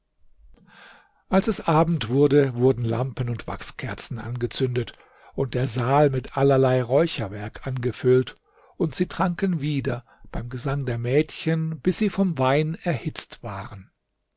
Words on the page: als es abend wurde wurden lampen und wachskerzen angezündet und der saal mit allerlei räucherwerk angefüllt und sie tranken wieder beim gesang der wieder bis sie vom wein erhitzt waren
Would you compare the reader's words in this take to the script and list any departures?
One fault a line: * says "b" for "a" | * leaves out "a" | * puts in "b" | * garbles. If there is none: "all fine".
* says "mädchen" for "wieder"